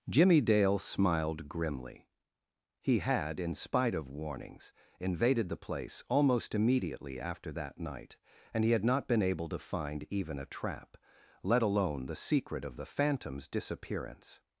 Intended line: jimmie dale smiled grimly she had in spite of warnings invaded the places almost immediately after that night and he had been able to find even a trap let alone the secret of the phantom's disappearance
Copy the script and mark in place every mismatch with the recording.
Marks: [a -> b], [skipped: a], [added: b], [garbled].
jimmie dale smiled grimly [she -> he] had in spite of warnings invaded the [places -> place] almost immediately after that night and he had [added: not] been able to find even a trap let alone the secret of the phantom's disappearance